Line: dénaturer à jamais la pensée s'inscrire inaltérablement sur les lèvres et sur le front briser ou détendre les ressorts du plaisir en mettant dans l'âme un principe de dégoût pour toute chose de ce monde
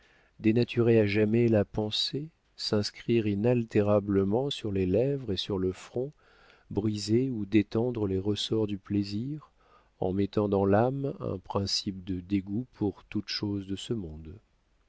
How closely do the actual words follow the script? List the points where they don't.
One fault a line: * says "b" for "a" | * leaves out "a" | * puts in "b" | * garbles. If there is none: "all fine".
all fine